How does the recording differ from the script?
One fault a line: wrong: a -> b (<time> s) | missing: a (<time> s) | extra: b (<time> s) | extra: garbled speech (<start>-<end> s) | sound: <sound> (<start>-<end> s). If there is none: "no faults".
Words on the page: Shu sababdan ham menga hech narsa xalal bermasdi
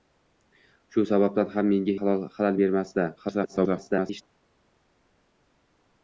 missing: hech narsa (1.9 s)
extra: garbled speech (3.2-4.2 s)